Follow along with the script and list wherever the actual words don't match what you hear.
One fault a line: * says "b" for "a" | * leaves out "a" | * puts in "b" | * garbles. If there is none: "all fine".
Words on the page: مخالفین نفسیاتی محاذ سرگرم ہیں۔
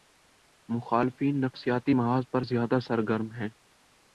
* puts in "پر زیادہ"